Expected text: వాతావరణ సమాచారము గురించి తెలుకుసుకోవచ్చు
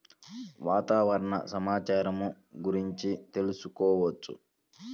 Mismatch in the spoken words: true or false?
false